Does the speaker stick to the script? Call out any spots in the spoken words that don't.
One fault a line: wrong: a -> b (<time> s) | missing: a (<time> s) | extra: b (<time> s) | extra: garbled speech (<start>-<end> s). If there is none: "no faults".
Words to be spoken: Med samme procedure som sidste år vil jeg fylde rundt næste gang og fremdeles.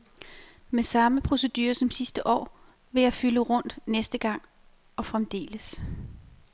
no faults